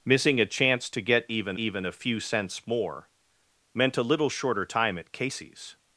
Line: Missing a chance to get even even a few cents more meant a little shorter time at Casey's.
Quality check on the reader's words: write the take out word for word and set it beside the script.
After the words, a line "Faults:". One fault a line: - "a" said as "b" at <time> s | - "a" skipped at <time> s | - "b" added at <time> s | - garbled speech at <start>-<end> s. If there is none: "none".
Missing a chance to get even even a few cents more meant a little shorter time at Casey's.
Faults:
none